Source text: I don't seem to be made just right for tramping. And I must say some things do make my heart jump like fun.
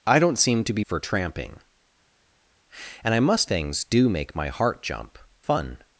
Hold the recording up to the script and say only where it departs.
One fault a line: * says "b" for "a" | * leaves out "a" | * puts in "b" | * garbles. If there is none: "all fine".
* leaves out "made just right"
* leaves out "say some"
* leaves out "like"